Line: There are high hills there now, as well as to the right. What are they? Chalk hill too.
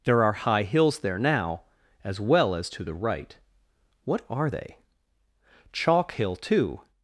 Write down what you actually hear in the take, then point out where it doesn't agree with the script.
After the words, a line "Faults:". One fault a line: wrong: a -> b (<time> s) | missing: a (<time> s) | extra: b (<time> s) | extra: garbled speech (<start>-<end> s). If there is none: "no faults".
There are high hills there now, as well as to the right. What are they? Chalk hill too.
Faults:
no faults